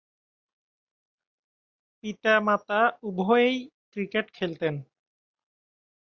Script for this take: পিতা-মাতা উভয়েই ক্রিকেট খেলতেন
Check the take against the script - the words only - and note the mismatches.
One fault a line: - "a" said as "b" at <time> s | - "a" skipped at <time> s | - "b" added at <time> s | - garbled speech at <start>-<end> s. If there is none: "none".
none